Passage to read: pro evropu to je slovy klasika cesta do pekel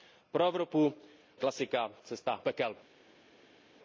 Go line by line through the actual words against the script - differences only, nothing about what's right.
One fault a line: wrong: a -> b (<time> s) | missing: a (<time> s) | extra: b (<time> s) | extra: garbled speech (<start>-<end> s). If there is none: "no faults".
missing: to je slovy (0.9 s)
missing: do (2.4 s)